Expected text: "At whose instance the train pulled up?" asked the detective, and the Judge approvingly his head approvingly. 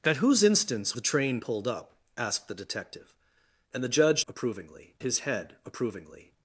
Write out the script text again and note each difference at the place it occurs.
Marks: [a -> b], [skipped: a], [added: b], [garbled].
"At whose instance the train pulled up?" asked the detective, and the Judge approvingly his head approvingly.